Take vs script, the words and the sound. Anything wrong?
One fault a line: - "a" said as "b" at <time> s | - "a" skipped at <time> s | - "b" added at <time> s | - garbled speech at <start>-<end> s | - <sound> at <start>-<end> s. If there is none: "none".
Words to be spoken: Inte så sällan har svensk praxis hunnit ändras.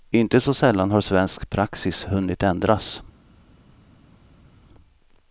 none